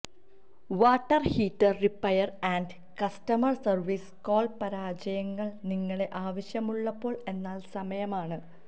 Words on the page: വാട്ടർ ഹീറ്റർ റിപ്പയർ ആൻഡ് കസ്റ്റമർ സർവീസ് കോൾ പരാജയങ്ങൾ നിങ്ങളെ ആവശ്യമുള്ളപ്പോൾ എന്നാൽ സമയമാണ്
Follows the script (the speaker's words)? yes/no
yes